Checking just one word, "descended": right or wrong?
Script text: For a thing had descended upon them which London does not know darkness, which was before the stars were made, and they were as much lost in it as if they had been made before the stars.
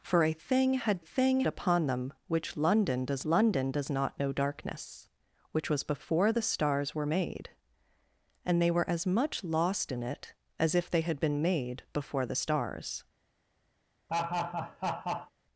wrong